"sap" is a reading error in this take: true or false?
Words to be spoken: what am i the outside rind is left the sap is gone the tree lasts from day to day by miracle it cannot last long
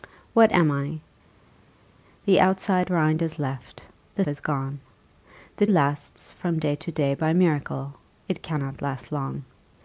true